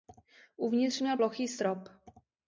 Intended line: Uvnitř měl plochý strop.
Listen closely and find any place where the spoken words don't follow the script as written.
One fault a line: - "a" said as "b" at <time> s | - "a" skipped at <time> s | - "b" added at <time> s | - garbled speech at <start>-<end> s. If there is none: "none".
none